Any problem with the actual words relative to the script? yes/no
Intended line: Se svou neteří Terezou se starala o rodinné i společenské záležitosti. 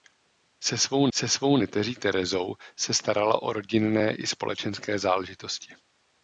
yes